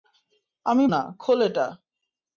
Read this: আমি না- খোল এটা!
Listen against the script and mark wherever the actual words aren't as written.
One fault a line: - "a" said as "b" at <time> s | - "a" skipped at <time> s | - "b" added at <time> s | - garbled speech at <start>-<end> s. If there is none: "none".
none